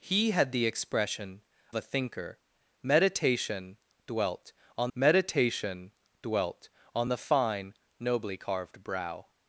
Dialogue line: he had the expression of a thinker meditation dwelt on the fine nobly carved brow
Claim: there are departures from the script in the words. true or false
true